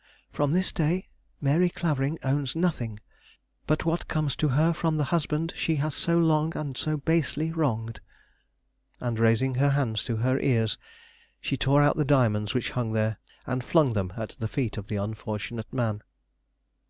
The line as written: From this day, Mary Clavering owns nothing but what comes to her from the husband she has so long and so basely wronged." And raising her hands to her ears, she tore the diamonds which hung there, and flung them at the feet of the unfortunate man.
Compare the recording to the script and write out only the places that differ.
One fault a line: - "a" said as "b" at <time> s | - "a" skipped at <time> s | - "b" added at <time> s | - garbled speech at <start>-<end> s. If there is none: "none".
- "out" added at 11.8 s